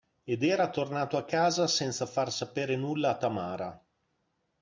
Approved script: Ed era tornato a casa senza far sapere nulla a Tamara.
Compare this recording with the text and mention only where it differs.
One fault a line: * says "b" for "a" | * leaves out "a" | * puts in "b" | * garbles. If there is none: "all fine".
all fine